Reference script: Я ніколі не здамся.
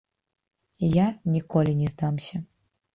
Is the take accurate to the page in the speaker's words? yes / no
yes